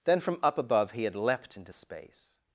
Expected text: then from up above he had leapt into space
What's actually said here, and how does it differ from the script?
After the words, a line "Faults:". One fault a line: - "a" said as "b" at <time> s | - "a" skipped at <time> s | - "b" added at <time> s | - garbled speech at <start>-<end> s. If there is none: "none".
then from up above he had leapt into space
Faults:
none